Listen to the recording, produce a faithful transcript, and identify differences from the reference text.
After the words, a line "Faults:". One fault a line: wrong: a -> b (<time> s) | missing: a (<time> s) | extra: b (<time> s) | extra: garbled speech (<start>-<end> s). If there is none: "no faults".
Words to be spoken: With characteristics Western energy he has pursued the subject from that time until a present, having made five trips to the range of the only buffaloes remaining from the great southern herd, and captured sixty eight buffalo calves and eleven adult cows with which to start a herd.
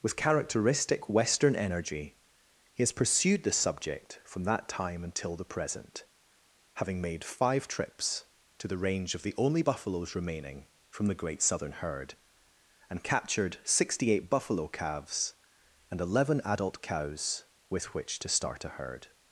With characteristic Western energy he has pursued the subject from that time until the present, having made five trips to the range of the only buffaloes remaining from the great southern herd, and captured sixty eight buffalo calves and eleven adult cows with which to start a herd.
Faults:
wrong: characteristics -> characteristic (0.1 s)
wrong: a -> the (5.3 s)